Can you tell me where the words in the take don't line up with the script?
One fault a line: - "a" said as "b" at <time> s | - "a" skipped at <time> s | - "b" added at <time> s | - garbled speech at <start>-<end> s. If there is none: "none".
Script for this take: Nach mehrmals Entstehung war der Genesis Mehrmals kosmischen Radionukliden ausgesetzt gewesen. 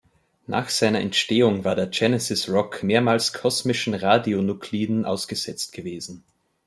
- "mehrmals" said as "seiner" at 0.7 s
- "Rock" added at 2.5 s